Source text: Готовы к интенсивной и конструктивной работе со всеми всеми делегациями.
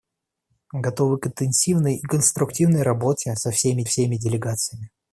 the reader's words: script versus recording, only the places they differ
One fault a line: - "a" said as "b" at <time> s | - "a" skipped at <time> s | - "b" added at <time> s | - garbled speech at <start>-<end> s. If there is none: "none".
none